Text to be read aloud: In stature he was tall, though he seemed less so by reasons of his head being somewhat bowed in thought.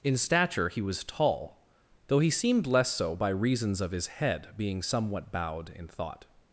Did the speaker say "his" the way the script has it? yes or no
yes